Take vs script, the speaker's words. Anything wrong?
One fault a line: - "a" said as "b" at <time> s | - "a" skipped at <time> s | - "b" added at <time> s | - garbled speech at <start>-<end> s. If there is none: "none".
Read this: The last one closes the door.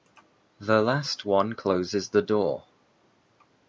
none